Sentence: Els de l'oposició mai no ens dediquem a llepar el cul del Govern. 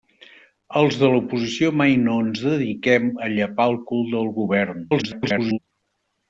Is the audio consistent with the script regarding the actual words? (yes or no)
no